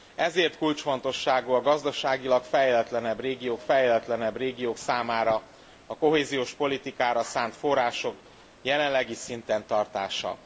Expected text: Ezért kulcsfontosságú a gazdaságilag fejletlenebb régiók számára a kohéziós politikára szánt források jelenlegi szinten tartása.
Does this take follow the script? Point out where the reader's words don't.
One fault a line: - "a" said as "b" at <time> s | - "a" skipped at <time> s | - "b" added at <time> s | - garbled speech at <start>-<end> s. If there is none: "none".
- "fejletlenebb régiók" added at 3.6 s